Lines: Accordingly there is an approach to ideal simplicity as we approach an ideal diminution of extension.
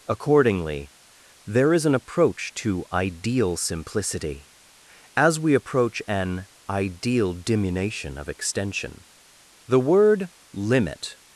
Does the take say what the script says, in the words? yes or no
no